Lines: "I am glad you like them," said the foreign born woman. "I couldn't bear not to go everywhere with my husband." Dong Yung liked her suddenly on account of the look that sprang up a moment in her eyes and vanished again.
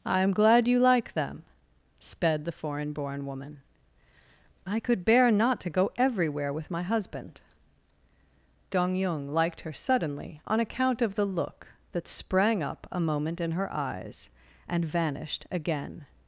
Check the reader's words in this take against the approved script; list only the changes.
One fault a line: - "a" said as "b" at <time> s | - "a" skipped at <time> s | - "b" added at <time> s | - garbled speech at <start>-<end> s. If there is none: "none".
- "said" said as "sped" at 2.0 s
- "couldn't" said as "could" at 4.8 s